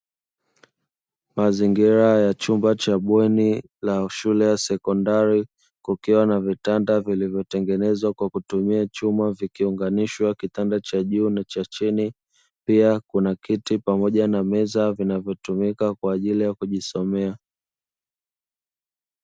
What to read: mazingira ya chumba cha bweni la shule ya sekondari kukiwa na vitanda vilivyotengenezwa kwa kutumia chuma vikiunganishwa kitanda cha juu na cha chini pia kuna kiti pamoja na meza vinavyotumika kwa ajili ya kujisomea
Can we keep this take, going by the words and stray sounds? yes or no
yes